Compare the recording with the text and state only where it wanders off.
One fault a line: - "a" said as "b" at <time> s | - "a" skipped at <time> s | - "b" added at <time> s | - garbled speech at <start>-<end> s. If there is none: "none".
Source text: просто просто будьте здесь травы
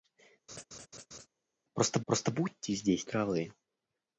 none